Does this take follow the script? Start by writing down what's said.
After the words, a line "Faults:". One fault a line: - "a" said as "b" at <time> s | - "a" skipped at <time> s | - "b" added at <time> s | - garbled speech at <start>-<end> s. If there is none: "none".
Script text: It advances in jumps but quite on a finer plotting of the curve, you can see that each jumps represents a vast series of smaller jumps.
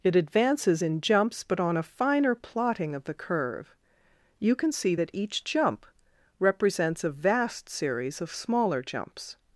It advances in jumps but on a finer plotting of the curve, you can see that each jump represents a vast series of smaller jumps.
Faults:
- "quite" skipped at 1.6 s
- "jumps" said as "jump" at 5.4 s